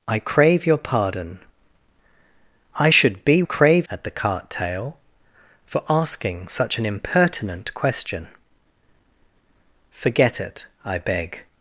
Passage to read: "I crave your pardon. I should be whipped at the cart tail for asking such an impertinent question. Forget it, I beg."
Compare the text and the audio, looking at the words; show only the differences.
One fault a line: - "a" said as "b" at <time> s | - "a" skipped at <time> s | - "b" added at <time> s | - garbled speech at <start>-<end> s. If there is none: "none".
- "whipped" said as "crave" at 3.4 s